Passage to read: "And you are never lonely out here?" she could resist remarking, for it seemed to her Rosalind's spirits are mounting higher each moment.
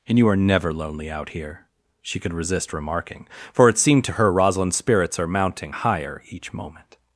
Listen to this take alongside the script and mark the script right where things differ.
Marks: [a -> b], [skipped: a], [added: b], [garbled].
"And you are never lonely out here?" she could resist remarking, for it seemed to her Rosalind's spirits are mounting higher each moment.